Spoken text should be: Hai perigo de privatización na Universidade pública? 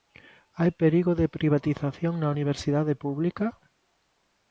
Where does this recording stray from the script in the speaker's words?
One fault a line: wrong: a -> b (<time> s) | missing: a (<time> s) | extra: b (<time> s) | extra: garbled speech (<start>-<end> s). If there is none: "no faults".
no faults